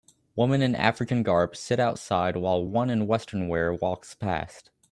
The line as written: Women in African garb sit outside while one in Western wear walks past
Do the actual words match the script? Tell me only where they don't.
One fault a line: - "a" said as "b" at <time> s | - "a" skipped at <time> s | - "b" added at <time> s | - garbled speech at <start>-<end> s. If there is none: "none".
none